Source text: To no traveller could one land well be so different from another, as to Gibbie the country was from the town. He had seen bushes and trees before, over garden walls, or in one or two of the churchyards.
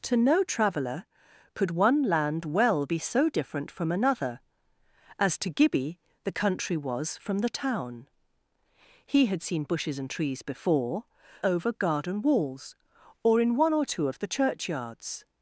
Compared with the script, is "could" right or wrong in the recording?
right